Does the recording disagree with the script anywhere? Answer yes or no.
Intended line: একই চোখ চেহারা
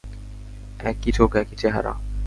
yes